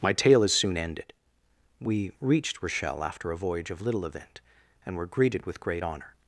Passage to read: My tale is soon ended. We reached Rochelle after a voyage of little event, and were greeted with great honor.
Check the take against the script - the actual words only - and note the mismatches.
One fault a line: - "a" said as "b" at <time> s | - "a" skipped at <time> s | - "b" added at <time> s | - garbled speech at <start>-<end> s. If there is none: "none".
none